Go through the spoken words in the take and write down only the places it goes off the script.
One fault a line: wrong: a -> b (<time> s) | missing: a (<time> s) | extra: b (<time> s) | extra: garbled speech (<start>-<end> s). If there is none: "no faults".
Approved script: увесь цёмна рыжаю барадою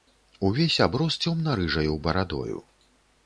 extra: аброс (0.8 s)